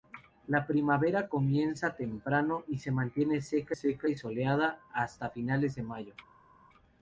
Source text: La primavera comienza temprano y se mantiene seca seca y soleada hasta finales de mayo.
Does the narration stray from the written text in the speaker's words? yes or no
no